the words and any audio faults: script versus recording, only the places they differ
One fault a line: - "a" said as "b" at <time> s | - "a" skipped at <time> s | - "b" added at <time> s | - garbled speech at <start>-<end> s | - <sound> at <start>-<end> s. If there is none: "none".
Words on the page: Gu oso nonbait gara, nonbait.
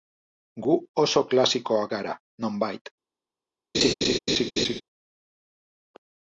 - "nonbait" said as "klasikoak" at 1.3 s
- laugh at 3.7-4.8 s